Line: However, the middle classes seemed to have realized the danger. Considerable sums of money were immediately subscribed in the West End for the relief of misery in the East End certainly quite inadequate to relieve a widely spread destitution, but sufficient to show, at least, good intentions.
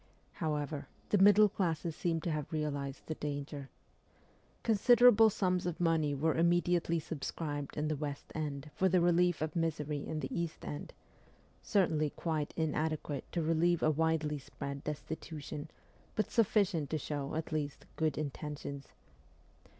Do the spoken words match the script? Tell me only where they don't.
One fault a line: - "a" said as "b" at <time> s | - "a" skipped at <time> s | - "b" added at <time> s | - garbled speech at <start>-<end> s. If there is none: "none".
none